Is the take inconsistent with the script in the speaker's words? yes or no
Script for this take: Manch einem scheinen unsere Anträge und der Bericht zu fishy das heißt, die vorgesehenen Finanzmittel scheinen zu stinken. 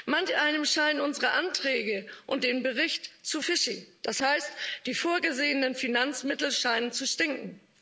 no